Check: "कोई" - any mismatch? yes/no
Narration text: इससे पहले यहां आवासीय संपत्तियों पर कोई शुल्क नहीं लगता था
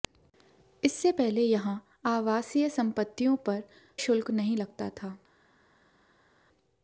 yes